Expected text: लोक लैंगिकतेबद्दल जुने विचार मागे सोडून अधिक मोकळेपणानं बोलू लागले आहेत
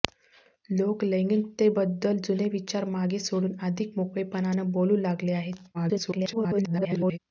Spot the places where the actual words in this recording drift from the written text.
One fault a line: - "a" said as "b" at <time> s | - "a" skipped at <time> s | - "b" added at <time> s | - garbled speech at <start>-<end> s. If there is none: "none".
- garbled speech at 5.7-7.2 s